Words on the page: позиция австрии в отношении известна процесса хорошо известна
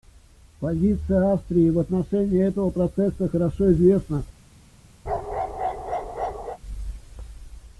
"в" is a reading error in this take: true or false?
false